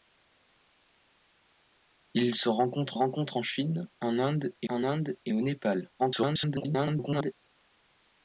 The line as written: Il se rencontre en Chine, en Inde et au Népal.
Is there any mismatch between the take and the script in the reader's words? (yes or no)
yes